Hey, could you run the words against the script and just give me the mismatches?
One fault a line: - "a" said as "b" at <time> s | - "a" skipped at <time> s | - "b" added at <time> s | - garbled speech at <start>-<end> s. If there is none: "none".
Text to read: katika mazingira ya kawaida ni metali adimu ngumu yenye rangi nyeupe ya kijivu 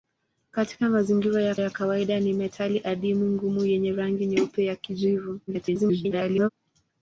- "ya" added at 1.6 s
- garbled speech at 5.5-6.5 s